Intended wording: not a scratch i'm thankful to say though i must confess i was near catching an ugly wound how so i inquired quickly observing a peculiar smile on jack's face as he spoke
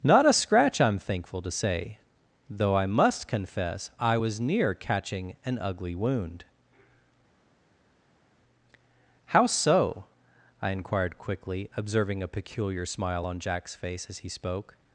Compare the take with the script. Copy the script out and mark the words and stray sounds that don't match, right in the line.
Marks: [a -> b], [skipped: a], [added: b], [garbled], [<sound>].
not a scratch i'm thankful to say though i must confess i was near catching an ugly wound how so i inquired quickly observing a peculiar smile on jack's face as he spoke